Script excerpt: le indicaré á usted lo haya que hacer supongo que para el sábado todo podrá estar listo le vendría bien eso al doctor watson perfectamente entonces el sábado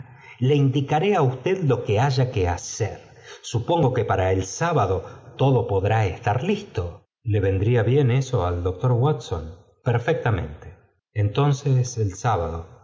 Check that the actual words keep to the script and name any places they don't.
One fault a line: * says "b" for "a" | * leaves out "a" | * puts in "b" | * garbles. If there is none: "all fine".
* puts in "que"